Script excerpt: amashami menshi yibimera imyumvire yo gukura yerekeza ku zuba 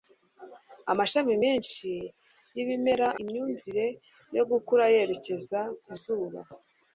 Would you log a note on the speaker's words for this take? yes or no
no